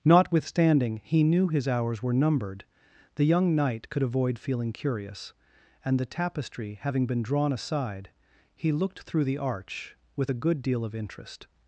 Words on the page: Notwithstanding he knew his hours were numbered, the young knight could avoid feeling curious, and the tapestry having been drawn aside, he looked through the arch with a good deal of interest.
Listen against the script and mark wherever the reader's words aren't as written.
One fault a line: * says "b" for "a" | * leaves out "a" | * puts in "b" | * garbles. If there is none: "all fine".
all fine